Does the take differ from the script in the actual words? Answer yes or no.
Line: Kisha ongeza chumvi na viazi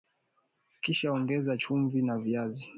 no